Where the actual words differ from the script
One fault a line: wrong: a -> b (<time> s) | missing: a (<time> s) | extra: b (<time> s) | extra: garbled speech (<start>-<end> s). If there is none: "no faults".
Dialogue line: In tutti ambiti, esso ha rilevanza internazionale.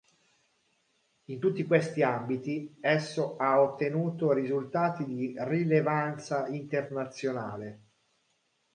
extra: questi (1.7 s)
extra: ottenuto risultati di (3.6 s)